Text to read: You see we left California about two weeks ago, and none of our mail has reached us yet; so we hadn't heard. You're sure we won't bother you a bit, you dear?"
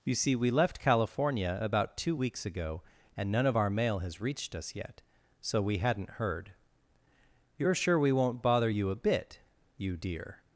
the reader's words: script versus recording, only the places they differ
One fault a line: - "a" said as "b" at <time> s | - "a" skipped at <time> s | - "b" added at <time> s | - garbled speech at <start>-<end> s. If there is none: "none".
none